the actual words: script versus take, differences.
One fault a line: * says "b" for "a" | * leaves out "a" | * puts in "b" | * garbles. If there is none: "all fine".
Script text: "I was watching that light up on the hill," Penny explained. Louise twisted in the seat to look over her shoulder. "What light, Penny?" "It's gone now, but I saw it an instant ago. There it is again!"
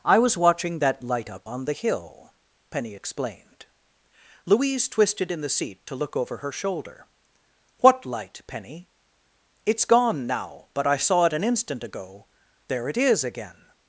all fine